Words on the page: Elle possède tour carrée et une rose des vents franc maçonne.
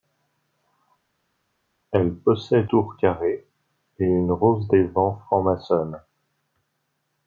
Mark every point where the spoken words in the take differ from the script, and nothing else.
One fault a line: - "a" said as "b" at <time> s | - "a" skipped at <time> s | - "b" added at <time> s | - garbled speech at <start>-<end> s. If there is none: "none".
none